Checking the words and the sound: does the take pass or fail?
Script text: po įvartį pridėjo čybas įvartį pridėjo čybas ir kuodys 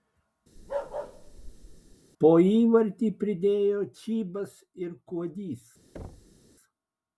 fail